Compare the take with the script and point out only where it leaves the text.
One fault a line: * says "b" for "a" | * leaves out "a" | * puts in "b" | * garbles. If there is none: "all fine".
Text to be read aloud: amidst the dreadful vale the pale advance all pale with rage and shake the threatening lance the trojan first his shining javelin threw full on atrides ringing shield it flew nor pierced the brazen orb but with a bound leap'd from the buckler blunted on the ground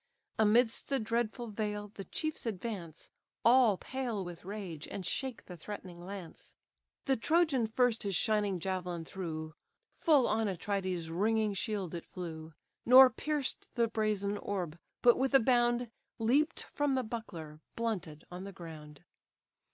* says "chiefs" for "pale"